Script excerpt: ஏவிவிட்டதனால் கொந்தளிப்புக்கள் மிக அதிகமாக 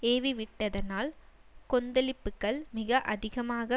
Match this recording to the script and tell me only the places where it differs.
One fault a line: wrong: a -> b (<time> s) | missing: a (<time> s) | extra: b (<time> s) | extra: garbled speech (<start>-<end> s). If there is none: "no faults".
no faults